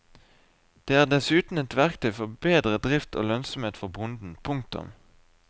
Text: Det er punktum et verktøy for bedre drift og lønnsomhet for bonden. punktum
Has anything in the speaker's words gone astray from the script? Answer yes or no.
yes